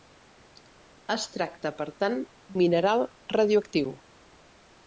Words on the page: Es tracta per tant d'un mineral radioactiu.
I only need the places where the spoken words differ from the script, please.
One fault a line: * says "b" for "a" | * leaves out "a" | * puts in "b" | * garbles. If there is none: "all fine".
* leaves out "d'un"